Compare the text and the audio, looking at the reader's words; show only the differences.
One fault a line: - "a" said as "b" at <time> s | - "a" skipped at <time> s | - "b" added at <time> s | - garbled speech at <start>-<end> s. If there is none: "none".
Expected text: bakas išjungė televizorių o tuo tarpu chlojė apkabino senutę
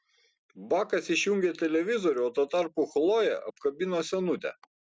none